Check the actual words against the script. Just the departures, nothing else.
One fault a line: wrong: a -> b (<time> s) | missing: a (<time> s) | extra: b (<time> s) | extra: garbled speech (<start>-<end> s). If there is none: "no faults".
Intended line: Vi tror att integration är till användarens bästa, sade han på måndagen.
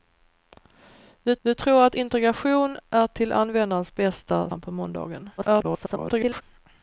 extra: vi (1.4 s)
missing: sade (4.5 s)
extra: garbled speech (5.4-6.4 s)